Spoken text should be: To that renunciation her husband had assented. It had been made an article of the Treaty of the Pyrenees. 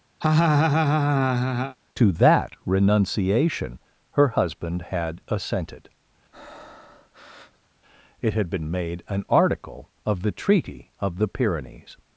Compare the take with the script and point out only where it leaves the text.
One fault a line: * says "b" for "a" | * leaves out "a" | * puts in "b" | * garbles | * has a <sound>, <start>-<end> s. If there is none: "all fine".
* has a laugh, 0.2-1.8 s
* has a breath, 6.3-7.7 s